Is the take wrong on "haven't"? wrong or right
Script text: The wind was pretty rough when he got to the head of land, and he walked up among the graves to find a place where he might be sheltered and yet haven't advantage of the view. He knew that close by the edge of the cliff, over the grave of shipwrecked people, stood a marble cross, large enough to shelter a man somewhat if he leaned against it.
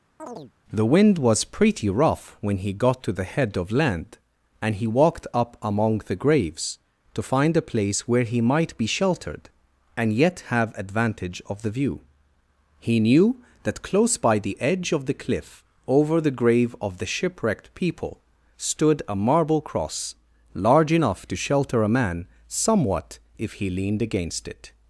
wrong